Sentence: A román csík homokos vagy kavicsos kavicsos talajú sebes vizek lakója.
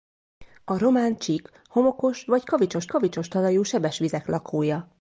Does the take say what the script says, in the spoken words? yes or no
yes